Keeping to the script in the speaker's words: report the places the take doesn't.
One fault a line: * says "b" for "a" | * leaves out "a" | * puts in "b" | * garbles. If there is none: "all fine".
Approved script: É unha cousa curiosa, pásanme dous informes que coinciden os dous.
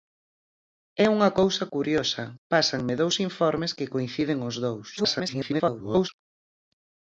* garbles